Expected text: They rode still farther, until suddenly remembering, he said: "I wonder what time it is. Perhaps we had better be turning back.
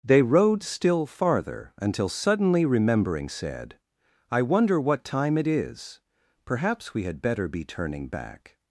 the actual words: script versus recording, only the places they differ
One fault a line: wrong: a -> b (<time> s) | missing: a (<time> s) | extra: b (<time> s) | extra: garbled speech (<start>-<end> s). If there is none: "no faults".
missing: he (3.3 s)